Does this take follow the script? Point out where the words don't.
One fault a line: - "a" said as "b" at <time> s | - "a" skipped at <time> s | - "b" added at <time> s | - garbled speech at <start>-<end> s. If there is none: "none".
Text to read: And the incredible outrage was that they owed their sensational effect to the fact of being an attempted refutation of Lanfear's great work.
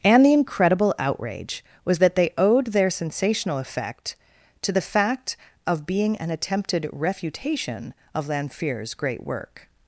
none